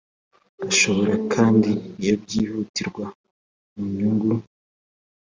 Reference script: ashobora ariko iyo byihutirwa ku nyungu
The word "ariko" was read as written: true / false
false